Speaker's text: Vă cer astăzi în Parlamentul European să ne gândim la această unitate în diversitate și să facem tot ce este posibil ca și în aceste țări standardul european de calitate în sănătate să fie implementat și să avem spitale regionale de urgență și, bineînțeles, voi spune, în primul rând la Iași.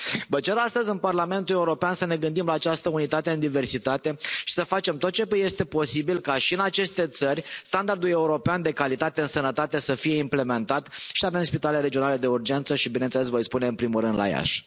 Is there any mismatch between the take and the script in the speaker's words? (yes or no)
no